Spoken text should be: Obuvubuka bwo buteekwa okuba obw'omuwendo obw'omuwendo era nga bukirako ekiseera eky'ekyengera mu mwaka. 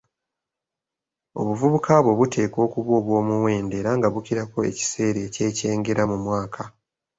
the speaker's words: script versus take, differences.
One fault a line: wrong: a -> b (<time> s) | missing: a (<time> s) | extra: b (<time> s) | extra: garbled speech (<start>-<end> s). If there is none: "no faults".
missing: obw'omuwendo (3.7 s)